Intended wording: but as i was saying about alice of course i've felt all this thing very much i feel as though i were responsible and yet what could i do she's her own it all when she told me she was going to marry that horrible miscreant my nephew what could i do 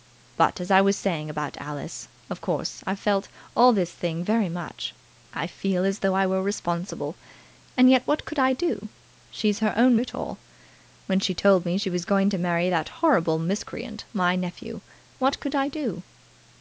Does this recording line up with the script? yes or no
yes